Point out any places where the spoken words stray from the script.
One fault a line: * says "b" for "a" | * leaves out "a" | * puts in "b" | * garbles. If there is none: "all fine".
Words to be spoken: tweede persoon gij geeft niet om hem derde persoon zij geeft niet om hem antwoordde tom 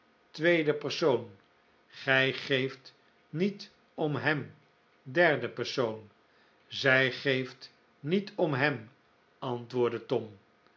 all fine